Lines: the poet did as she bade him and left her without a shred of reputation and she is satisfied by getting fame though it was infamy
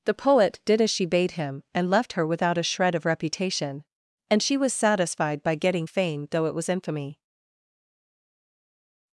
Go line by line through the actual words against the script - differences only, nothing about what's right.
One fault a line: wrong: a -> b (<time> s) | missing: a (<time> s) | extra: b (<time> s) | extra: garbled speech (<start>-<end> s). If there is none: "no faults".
wrong: is -> was (4.6 s)